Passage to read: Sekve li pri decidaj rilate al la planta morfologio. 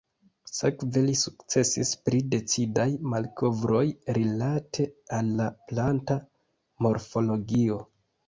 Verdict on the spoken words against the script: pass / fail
fail